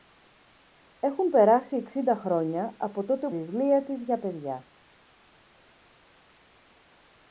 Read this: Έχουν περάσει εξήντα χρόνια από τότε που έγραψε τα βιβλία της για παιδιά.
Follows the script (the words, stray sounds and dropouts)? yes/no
no